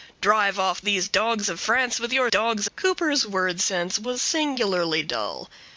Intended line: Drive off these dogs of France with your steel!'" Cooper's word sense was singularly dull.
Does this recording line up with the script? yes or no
no